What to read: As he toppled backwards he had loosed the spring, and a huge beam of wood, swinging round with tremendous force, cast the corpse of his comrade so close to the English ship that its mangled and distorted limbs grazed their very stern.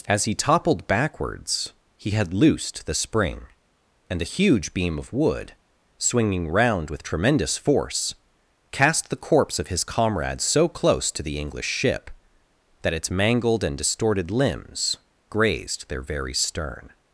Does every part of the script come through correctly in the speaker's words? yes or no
yes